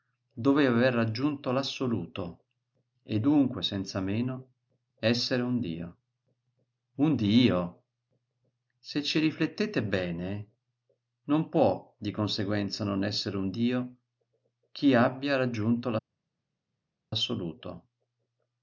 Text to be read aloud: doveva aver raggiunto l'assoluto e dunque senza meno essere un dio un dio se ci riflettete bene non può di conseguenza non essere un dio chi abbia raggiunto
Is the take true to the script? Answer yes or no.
yes